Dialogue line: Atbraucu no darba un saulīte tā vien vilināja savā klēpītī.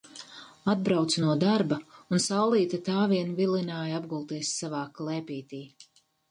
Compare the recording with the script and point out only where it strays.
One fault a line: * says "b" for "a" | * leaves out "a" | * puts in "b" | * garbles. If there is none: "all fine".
* puts in "apgulties"